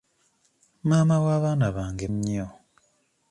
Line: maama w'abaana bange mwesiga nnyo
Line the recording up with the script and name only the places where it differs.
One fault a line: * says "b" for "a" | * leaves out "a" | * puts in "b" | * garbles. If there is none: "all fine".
* leaves out "mwesiga"